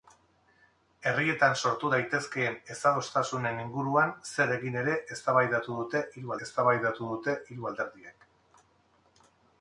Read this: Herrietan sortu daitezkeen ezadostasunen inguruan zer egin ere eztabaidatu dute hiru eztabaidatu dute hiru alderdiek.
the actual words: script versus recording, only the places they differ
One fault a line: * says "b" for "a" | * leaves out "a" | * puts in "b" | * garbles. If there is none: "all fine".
all fine